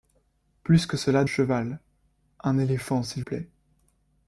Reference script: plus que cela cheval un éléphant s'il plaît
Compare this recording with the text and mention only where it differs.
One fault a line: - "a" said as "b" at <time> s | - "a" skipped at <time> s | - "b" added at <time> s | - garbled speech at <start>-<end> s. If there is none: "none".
none